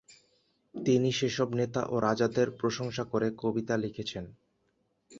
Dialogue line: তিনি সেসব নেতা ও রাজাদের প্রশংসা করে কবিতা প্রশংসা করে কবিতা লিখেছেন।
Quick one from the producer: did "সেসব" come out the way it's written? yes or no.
yes